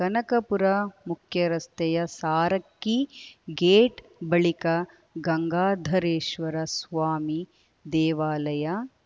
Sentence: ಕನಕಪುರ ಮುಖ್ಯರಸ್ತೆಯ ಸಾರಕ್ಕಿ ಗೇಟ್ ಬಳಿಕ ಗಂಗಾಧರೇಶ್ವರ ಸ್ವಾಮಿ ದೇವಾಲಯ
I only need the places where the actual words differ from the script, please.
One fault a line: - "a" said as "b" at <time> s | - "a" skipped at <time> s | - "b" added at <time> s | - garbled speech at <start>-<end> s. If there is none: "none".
none